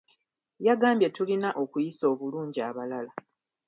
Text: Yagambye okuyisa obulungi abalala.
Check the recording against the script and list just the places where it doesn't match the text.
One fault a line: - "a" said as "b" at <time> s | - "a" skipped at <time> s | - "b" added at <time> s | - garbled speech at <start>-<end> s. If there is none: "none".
- "tulina" added at 1.1 s